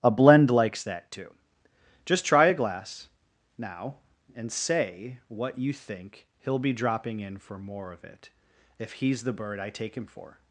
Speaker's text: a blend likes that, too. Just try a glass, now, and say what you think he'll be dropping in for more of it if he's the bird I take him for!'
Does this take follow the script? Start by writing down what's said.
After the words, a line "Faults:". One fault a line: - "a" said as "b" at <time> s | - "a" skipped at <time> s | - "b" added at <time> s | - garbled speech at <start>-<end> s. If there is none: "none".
a blend likes that, too. Just try a glass, now, and say what you think he'll be dropping in for more of it if he's the bird I take him for!'
Faults:
none